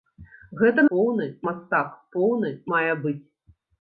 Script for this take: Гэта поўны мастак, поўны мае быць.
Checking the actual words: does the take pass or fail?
pass